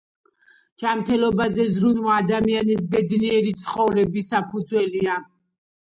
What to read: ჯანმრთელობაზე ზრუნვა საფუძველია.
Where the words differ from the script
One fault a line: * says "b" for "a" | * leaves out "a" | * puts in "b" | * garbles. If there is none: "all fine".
* puts in "ადამიანის ბედნიერი ცხოვრების"